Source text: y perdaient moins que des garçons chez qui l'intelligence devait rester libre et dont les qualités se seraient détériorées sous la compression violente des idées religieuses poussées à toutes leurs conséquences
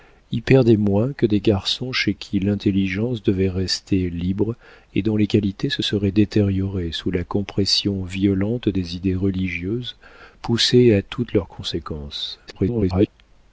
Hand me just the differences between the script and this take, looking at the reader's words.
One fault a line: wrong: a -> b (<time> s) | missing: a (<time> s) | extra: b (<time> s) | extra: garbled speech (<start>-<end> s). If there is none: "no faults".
extra: garbled speech (12.5-13.1 s)